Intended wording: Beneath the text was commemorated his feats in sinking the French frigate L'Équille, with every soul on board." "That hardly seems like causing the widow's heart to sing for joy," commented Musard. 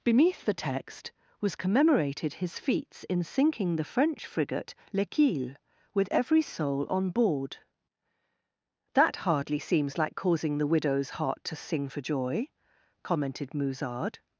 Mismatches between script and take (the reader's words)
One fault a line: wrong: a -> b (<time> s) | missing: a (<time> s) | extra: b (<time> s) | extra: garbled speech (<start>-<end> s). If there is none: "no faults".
no faults